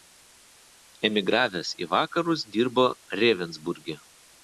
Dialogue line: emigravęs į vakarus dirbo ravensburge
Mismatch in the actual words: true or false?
false